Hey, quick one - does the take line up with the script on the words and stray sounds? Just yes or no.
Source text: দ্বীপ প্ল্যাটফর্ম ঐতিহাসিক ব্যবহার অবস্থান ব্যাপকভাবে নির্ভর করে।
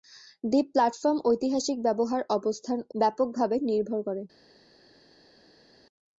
yes